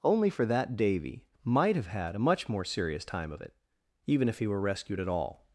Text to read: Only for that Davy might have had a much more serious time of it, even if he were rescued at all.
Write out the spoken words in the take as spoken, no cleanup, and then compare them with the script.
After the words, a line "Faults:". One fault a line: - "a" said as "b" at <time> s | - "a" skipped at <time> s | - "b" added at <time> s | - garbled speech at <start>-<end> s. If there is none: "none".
Only for that Davy might have had a much more serious time of it, even if he were rescued at all.
Faults:
none